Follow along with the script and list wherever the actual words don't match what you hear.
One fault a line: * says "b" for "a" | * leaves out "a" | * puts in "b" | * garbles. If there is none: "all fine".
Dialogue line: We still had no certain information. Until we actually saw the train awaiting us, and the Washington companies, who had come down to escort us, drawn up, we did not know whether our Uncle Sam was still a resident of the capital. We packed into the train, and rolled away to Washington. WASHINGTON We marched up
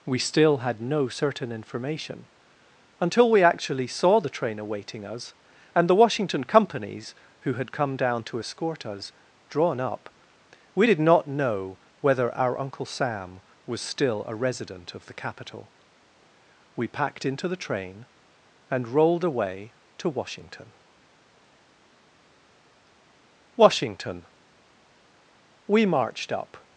all fine